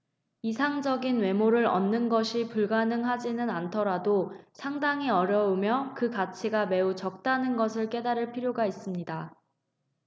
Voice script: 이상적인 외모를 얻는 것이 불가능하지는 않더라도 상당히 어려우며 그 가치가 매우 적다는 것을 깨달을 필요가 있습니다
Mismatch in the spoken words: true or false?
false